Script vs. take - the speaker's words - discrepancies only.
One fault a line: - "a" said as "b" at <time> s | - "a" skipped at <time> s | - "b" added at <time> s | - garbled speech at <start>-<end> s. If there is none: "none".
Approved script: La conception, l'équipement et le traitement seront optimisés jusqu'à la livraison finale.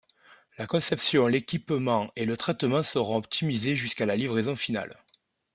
none